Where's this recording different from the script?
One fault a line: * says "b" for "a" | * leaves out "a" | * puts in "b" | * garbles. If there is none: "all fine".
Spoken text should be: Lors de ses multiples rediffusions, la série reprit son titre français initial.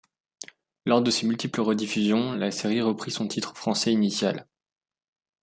all fine